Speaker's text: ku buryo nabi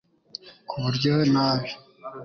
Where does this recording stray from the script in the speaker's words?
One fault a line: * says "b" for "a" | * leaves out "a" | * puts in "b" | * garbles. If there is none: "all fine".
all fine